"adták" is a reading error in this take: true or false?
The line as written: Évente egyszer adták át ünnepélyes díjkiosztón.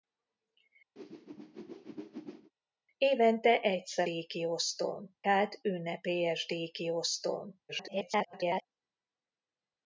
true